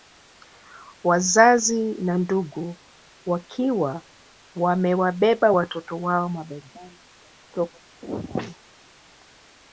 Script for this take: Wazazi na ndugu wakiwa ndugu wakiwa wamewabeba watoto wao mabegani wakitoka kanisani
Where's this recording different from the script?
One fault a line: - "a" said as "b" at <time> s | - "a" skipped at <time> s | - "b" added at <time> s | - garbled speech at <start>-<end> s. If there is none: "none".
- "ndugu wakiwa" skipped at 4.0 s